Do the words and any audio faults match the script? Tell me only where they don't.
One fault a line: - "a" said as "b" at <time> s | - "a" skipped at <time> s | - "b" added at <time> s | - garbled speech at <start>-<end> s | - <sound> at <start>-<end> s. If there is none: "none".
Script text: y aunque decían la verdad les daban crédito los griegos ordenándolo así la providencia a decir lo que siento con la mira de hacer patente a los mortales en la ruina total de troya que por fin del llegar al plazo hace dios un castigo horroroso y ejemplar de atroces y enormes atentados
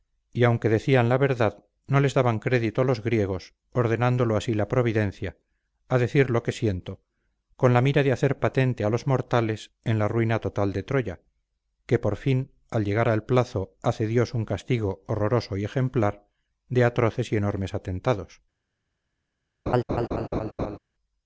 - "no" added at 1.9 s
- "del" said as "al" at 12.7 s
- laugh at 19.7-20.8 s